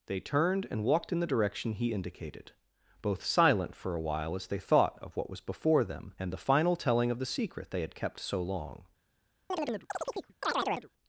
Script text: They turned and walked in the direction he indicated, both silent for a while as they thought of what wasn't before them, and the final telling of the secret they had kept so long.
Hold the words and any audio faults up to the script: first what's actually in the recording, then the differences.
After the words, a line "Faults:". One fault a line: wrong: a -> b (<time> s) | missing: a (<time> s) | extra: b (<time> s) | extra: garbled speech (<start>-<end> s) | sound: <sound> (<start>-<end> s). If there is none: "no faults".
They turned and walked in the direction he indicated, both silent for a while as they thought of what was before them, and the final telling of the secret they had kept so long.
Faults:
wrong: wasn't -> was (5.3 s)
sound: chirp (9.5-10.9 s)